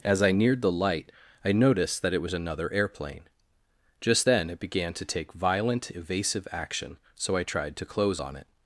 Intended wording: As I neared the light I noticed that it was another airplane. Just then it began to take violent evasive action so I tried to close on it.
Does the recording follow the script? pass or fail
pass